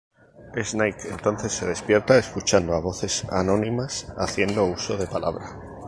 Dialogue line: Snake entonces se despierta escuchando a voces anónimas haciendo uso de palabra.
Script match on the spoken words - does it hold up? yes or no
yes